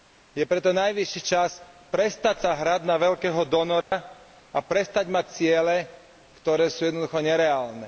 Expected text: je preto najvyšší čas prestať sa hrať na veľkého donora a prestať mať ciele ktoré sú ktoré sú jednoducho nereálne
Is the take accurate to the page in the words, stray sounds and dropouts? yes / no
no